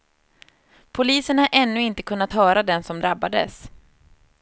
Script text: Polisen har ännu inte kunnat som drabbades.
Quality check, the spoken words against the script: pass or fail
fail